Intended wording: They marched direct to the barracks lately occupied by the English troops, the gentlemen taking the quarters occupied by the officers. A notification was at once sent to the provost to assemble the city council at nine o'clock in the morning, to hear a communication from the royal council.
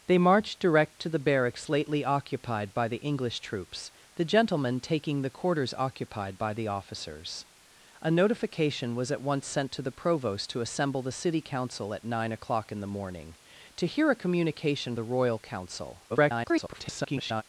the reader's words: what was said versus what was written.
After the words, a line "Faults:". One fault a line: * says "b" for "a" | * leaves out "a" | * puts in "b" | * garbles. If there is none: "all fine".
They marched direct to the barracks lately occupied by the English troops, the gentlemen taking the quarters occupied by the officers. A notification was at once sent to the provost to assemble the city council at nine o'clock in the morning, to hear a communication the royal council. [garbled]
Faults:
* leaves out "from"
* garbles